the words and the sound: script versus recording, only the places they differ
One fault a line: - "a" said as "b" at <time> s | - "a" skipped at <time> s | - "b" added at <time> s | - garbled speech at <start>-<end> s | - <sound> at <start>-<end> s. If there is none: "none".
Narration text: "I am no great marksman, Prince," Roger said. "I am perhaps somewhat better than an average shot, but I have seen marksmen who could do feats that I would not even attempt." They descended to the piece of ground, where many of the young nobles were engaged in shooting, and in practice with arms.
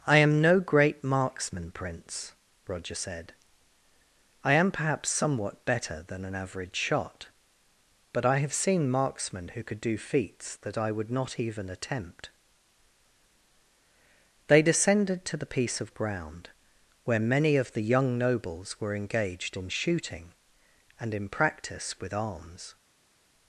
none